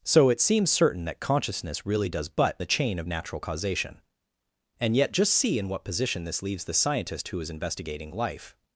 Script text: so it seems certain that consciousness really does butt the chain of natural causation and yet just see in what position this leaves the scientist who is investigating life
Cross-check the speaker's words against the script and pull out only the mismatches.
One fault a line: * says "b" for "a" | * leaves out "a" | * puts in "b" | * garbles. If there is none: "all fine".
all fine